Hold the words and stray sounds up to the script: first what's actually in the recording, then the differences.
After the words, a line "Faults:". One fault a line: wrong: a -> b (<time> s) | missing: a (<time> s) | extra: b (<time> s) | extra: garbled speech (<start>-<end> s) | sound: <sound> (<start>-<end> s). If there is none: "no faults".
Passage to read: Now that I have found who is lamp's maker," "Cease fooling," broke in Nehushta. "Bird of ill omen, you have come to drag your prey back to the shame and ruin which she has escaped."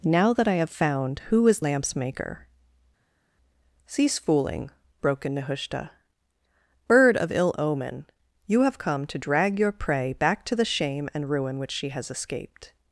Now that I have found who is lamp's maker," "Cease fooling," broke in Nehushta. "Bird of ill omen, you have come to drag your prey back to the shame and ruin which she has escaped."
Faults:
no faults